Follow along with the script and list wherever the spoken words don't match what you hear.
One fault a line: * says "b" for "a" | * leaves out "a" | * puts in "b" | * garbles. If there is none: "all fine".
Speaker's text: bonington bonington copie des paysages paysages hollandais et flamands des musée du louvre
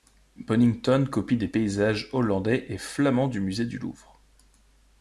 * leaves out "bonington"
* leaves out "paysages"
* says "du" for "des"